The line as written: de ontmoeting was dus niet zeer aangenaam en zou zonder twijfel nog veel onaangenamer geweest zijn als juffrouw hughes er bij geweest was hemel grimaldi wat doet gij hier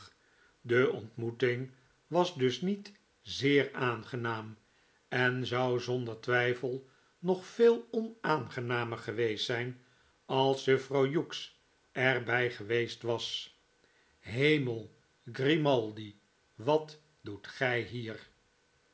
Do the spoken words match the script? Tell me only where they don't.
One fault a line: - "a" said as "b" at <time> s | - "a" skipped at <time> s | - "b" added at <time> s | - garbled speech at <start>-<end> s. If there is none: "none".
none